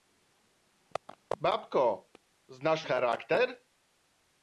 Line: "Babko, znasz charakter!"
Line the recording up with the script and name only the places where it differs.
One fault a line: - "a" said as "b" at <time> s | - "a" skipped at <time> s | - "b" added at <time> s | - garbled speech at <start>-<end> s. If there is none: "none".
none